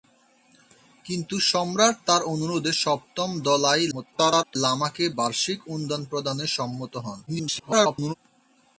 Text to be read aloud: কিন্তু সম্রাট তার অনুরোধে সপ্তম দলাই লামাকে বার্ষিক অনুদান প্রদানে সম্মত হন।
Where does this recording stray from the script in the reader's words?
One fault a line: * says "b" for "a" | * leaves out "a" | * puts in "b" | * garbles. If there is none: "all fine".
* garbles
* garbles